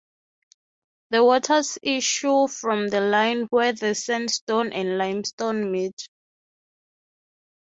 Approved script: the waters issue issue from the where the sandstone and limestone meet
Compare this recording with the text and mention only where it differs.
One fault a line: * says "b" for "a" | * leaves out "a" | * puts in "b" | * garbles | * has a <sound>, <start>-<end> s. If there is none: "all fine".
* leaves out "issue"
* puts in "line"